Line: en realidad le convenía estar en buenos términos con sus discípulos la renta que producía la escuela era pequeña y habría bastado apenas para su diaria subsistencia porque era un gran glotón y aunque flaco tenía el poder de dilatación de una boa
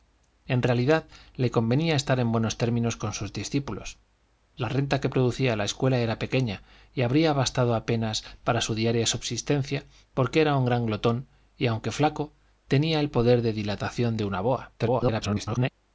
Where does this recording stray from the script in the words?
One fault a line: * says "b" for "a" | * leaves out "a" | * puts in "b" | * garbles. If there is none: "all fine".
* garbles